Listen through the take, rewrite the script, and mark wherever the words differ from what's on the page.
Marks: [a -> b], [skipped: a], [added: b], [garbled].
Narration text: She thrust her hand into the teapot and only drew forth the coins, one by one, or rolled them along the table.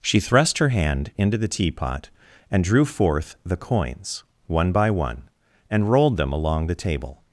She thrust her hand into the teapot and [skipped: only] drew forth the coins, one by one, [or -> and] rolled them along the table.